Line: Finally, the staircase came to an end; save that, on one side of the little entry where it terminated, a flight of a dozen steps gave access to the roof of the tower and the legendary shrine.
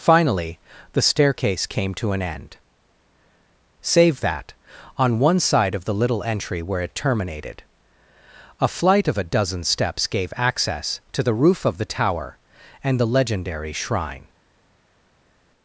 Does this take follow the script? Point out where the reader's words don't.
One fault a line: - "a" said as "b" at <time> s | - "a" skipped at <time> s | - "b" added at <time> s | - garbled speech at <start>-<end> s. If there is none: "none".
none